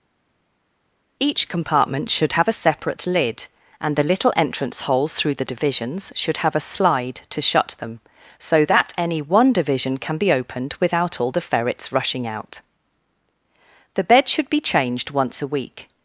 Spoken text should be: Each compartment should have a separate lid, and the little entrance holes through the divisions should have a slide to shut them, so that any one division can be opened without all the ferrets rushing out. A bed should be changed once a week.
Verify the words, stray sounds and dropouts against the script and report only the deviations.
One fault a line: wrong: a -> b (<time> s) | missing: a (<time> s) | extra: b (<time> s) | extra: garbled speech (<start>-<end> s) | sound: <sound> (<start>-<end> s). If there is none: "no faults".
wrong: A -> The (13.9 s)